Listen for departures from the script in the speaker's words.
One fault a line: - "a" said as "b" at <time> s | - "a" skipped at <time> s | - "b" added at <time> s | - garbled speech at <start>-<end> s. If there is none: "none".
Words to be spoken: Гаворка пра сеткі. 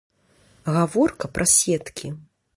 none